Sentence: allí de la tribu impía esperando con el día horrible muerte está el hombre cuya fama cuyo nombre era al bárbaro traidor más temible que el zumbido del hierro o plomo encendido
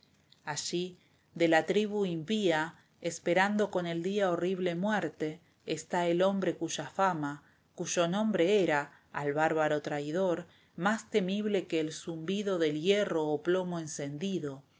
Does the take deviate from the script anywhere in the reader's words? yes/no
no